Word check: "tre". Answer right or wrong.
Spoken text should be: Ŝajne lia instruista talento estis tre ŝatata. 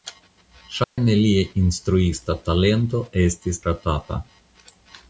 wrong